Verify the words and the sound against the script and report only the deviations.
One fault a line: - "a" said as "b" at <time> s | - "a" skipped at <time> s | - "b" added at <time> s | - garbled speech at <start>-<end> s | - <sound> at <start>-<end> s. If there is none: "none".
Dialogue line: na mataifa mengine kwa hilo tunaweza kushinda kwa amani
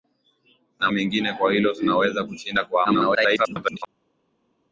- "mataifa" skipped at 0.9 s
- garbled speech at 2.8-3.8 s